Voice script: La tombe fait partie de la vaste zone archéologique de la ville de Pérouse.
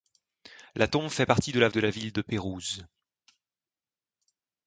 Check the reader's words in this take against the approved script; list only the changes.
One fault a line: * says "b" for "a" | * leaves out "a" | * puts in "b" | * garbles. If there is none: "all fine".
* leaves out "vaste zone archéologique"